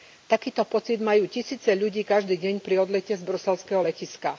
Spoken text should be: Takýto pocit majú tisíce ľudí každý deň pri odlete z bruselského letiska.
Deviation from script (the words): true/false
false